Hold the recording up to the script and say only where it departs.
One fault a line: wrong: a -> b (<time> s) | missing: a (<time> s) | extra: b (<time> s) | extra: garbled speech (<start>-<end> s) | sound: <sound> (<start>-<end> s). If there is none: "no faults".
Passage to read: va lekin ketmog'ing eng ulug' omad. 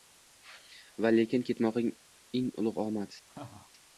sound: laugh (3.3-3.7 s)